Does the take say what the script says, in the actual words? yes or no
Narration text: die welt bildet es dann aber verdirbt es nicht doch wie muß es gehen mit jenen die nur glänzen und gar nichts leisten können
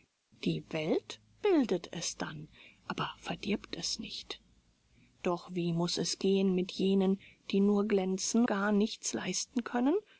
no